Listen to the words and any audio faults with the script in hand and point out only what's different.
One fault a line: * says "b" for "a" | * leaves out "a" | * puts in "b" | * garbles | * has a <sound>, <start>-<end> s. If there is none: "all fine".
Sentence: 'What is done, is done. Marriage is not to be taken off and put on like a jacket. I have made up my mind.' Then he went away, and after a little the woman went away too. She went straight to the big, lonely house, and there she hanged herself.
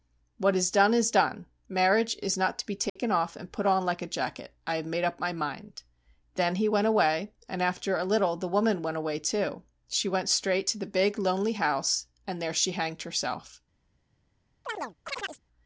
* has a dropout, 2.9-3.0 s
* has a chirp, 14.6-15.4 s